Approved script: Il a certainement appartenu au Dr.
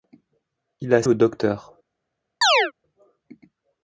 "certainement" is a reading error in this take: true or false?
true